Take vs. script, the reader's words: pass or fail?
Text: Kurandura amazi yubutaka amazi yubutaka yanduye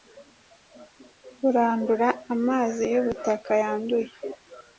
fail